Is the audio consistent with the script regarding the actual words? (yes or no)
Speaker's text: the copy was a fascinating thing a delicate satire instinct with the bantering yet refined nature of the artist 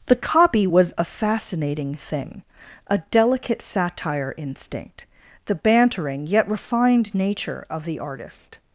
no